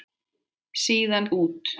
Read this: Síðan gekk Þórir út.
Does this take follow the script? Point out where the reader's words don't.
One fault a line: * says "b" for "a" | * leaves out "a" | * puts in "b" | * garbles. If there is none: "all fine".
* leaves out "gekk Þórir"